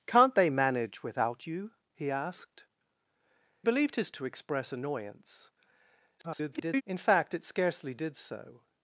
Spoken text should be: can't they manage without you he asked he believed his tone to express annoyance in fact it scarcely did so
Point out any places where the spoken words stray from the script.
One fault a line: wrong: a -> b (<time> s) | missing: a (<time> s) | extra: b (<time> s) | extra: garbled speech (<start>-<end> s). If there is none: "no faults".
missing: he (2.6 s)
missing: tone (4.1 s)
extra: garbled speech (6.2-6.8 s)